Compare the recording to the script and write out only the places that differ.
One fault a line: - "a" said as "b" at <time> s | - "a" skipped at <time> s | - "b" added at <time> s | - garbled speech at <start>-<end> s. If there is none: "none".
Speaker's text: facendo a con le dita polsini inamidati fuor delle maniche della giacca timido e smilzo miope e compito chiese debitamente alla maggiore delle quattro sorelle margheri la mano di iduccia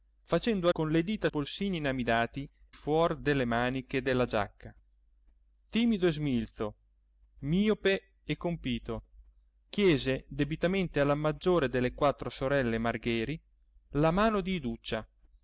none